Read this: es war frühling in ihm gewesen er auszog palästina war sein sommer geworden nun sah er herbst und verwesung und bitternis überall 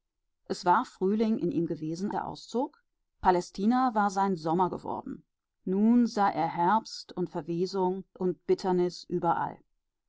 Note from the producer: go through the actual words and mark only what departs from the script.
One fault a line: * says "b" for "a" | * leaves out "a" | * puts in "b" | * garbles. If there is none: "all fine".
all fine